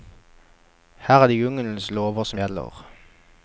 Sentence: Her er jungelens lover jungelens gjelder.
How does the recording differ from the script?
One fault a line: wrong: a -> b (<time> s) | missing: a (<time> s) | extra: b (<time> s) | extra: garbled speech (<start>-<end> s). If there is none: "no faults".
extra: det (1.3 s)
wrong: jungelens -> som (2.2 s)